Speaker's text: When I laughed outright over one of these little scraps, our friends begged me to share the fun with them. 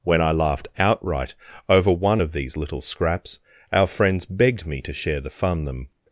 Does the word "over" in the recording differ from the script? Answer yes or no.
no